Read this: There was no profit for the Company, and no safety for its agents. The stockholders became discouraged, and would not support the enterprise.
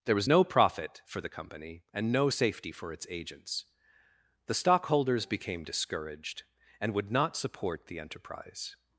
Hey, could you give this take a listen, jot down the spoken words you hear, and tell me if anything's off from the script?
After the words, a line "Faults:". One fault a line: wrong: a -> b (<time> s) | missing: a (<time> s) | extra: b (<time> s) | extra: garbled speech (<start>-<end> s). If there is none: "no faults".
There was no profit for the Company, and no safety for its agents. The stockholders became discouraged, and would not support the enterprise.
Faults:
no faults